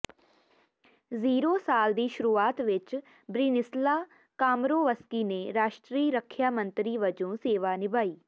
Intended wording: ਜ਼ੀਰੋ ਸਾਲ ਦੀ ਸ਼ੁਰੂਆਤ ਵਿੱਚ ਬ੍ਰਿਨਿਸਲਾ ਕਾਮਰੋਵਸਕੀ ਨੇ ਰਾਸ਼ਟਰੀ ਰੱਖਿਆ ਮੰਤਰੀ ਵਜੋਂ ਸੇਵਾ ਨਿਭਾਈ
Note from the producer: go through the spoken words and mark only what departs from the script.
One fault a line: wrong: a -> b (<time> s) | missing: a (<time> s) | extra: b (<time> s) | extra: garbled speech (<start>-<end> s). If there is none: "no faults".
no faults